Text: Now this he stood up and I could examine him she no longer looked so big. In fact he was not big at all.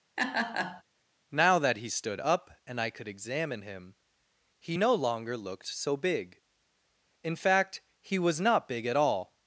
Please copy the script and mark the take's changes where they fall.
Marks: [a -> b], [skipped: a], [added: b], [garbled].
Now [this -> that] he stood up and I could examine him [she -> he] no longer looked so big. In fact he was not big at all.